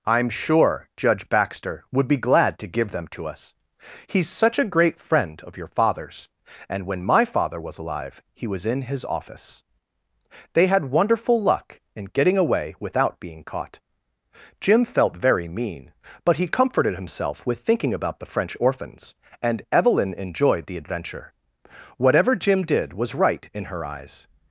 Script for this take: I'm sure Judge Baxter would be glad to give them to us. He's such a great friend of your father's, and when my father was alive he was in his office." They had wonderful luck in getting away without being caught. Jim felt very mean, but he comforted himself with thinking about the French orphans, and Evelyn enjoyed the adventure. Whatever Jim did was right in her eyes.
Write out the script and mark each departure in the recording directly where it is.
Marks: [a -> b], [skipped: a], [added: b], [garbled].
I'm sure Judge Baxter would be glad to give them to us. He's such a great friend of your father's, and when my father was alive he was in his office." They had wonderful luck in getting away without being caught. Jim felt very mean, but he comforted himself with thinking about the French orphans, and Evelyn enjoyed the adventure. Whatever Jim did was right in her eyes.